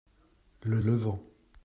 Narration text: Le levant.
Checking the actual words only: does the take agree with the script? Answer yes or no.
yes